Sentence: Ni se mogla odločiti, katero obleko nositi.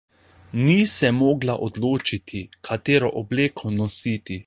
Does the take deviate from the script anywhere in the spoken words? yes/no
no